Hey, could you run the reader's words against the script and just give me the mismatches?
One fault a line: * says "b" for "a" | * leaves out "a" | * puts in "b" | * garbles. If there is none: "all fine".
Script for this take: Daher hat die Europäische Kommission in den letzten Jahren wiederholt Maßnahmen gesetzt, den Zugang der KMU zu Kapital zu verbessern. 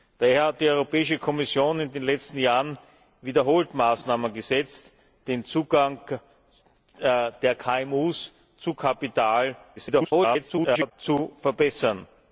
* garbles